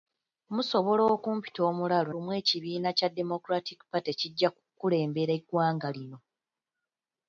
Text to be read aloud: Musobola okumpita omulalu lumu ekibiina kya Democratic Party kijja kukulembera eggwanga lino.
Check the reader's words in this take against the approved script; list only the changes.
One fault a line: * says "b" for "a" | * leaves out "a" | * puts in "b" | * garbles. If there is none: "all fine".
all fine